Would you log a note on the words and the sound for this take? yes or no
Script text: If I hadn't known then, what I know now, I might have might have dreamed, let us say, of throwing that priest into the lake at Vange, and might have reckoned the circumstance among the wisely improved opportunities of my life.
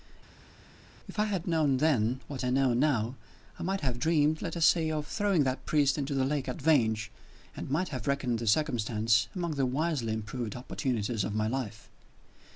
yes